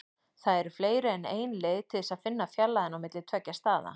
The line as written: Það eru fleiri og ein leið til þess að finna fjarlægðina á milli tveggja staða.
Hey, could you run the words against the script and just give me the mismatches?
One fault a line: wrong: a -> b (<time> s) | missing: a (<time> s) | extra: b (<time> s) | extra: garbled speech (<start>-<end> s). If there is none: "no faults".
wrong: og -> en (1.1 s)